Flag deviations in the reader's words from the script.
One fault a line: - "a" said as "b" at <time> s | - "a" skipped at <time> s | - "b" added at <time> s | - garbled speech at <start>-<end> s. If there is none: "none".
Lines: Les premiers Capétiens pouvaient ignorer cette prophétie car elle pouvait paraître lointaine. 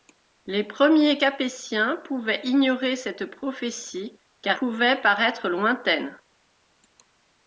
- "elle" skipped at 4.6 s